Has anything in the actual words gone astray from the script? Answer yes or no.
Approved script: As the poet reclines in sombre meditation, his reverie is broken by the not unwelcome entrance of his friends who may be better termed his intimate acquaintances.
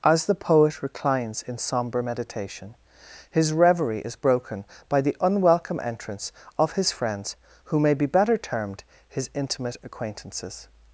yes